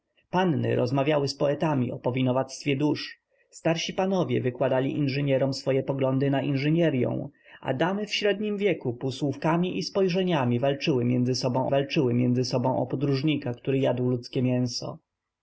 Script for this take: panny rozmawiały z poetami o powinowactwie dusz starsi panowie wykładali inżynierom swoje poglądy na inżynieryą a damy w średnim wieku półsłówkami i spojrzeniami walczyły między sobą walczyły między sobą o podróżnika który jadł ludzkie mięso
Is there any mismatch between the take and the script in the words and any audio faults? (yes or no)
no